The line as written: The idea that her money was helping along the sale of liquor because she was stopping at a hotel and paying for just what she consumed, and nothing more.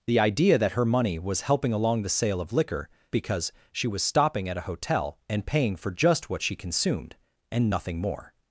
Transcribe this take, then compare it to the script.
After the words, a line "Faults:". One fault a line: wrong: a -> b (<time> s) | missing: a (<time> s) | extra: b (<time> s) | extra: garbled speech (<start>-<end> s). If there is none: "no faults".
The idea that her money was helping along the sale of liquor because she was stopping at a hotel and paying for just what she consumed, and nothing more.
Faults:
no faults